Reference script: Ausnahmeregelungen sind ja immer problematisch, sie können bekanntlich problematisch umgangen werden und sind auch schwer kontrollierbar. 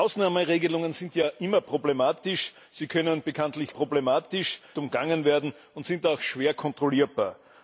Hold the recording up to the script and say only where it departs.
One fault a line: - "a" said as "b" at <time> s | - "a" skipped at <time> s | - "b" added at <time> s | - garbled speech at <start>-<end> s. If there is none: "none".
none